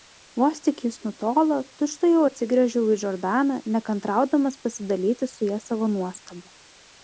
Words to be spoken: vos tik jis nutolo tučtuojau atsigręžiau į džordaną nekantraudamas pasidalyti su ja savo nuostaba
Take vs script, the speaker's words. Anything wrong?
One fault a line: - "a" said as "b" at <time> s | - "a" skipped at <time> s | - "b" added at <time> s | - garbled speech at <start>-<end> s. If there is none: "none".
none